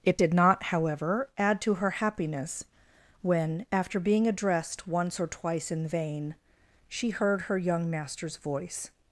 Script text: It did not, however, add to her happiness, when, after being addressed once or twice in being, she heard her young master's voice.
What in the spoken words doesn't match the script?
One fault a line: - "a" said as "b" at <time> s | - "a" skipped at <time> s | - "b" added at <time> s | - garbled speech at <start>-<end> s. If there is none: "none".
- "being" said as "vain" at 5.9 s